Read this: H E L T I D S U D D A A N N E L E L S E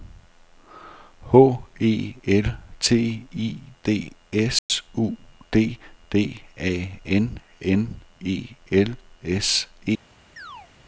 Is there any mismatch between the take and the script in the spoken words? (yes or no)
yes